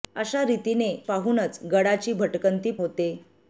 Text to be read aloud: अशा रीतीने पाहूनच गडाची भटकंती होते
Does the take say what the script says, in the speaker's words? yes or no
yes